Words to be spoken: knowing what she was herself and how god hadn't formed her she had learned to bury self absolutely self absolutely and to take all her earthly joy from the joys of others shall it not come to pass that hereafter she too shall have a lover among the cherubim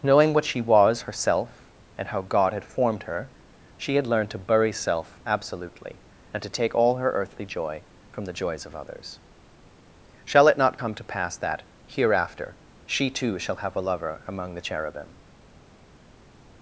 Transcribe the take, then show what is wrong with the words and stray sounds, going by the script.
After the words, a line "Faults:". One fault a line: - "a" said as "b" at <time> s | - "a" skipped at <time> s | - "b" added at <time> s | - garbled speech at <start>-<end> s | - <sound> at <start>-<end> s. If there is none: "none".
knowing what she was herself and how god had formed her she had learned to bury self absolutely and to take all her earthly joy from the joys of others shall it not come to pass that hereafter she too shall have a lover among the cherubim
Faults:
- "hadn't" said as "had" at 2.5 s
- "self absolutely" skipped at 6.0 s